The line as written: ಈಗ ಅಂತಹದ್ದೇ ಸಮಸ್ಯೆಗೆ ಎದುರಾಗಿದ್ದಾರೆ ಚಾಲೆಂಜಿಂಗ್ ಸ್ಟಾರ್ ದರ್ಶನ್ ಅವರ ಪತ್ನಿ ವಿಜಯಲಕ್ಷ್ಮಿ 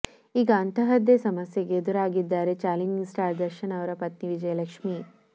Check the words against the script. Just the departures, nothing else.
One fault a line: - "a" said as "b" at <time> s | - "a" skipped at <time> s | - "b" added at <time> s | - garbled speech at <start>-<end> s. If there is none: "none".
none